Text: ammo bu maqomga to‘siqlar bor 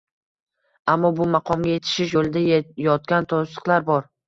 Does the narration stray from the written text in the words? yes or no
yes